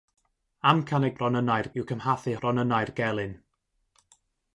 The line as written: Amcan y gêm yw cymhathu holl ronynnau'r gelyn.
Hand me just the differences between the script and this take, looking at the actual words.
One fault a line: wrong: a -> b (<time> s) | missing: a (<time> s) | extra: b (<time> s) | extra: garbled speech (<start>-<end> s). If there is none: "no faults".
wrong: gêm -> ronynnau'r (1.2 s)
missing: holl (2.4 s)